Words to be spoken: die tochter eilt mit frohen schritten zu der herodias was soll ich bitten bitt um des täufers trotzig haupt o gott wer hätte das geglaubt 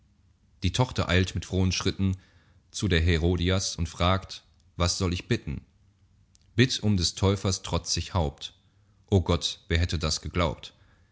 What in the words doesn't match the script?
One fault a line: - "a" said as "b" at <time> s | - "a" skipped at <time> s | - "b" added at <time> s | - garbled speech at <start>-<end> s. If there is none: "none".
- "und fragt" added at 3.7 s